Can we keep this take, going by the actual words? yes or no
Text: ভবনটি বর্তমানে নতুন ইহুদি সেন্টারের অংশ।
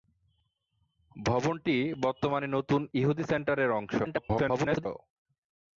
no